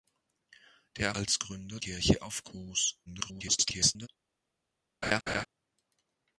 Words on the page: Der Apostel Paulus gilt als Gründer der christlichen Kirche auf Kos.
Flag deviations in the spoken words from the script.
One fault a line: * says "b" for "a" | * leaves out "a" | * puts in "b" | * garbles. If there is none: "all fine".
* leaves out "Apostel Paulus gilt"
* leaves out "der christlichen"
* garbles